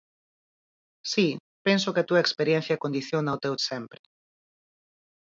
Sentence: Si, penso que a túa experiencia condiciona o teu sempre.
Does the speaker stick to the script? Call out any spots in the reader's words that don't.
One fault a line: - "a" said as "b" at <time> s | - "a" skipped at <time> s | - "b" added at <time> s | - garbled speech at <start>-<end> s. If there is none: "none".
none